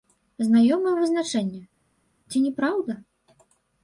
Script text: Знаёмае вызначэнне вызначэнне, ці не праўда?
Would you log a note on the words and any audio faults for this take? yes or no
yes